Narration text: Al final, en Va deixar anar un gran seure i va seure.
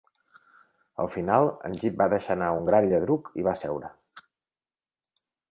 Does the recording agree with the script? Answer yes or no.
no